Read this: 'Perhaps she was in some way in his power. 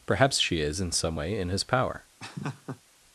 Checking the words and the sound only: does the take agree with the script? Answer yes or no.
no